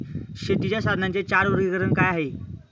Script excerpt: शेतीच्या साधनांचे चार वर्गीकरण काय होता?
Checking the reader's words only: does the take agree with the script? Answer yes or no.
no